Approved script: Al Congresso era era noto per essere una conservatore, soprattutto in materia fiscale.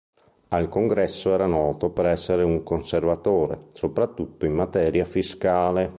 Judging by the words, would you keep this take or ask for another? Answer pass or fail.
fail